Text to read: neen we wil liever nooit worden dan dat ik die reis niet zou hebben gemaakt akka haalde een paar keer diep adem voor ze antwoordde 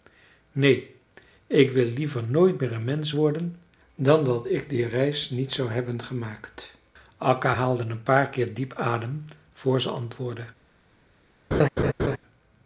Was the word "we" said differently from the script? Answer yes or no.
yes